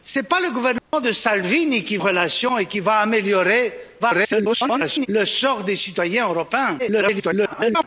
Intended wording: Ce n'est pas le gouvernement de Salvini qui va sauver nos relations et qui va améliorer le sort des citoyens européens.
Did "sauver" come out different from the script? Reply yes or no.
yes